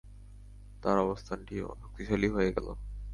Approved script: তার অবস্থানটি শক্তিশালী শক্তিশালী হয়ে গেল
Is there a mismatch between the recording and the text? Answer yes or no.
yes